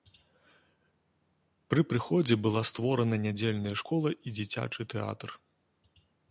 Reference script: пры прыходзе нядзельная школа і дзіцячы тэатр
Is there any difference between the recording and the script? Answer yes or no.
yes